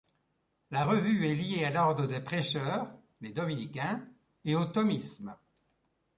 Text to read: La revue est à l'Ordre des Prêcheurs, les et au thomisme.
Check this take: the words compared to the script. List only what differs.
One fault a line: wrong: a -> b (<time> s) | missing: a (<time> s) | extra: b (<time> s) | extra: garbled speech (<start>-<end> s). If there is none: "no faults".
extra: liée (1.3 s)
extra: dominicains (3.3 s)